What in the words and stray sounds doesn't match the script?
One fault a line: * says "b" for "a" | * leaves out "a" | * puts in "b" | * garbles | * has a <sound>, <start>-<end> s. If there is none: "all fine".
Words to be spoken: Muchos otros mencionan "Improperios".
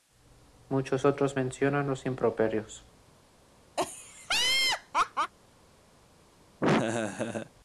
* puts in "los"
* has a laugh, 3.8-5.3 s
* has a laugh, 6.6-7.5 s